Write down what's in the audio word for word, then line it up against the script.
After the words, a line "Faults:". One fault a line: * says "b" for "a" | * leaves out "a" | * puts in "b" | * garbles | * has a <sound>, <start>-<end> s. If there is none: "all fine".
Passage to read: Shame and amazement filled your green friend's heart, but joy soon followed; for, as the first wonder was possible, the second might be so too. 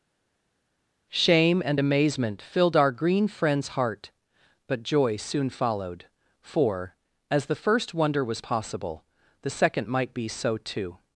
Shame and amazement filled our green friend's heart, but joy soon followed; for, as the first wonder was possible, the second might be so too.
Faults:
* says "our" for "your"